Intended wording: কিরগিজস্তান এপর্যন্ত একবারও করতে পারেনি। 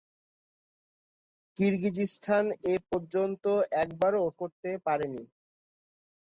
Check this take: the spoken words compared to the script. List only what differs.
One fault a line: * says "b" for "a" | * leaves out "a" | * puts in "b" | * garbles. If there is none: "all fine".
all fine